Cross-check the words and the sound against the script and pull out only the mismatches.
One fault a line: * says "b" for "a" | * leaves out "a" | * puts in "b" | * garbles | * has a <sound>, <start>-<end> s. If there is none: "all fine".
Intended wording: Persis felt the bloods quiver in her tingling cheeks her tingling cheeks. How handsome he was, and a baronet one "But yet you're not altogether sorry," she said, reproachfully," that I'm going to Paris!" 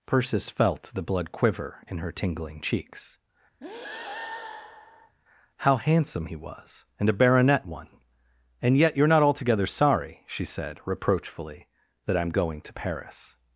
* says "blood" for "bloods"
* leaves out "her tingling cheeks"
* has a breath, 3.6-5.2 s
* says "And" for "But"